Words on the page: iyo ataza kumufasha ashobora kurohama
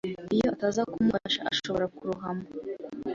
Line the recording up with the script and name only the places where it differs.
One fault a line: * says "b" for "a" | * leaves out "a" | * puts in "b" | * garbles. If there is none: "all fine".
all fine